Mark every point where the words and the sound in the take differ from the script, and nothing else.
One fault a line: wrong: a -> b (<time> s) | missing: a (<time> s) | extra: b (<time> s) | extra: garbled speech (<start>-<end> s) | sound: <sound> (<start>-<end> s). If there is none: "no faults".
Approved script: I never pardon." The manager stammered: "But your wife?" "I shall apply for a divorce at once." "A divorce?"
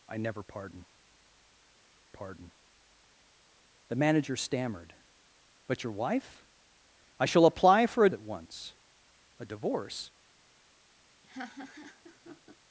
extra: pardon (2.1 s)
missing: divorce (8.1 s)
sound: laugh (11.2-12.6 s)